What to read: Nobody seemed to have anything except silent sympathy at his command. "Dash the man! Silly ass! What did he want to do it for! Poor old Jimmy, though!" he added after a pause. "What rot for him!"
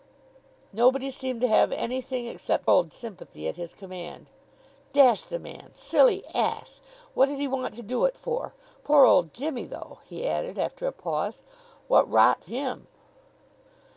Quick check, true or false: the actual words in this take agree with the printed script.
false